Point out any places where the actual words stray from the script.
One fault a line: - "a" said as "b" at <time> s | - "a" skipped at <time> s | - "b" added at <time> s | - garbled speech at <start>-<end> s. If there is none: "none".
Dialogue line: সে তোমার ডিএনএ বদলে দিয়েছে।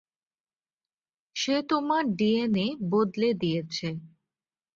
none